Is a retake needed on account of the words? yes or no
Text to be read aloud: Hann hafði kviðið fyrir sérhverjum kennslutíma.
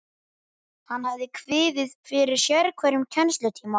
no